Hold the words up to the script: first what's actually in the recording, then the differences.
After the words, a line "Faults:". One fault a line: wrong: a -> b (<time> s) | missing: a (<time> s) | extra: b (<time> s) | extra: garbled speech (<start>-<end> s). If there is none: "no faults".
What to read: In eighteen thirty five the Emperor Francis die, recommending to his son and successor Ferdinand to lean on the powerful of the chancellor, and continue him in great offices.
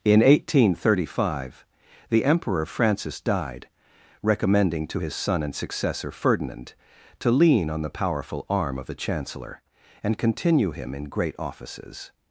In eighteen thirty five the Emperor Francis died, recommending to his son and successor Ferdinand to lean on the powerful arm of the chancellor, and continue him in great offices.
Faults:
wrong: die -> died (3.2 s)
extra: arm (8.5 s)